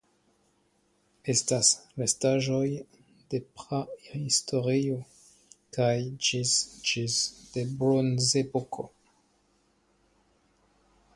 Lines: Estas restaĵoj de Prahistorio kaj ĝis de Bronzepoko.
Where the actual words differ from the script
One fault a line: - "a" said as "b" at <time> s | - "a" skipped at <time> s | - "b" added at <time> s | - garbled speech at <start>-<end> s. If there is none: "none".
- "ĝis" added at 6.9 s